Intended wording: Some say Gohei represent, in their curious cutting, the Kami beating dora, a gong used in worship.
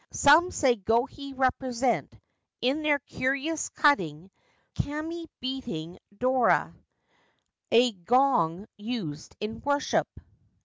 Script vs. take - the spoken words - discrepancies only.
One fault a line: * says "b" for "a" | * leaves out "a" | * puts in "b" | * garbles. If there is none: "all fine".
* leaves out "the"